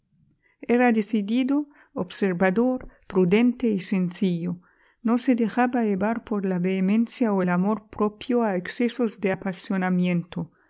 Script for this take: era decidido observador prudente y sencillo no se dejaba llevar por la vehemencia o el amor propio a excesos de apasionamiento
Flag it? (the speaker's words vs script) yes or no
no